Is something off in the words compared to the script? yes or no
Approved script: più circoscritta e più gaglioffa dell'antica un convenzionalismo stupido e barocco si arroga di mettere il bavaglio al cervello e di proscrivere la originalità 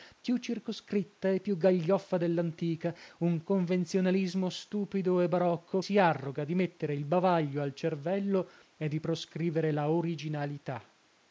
no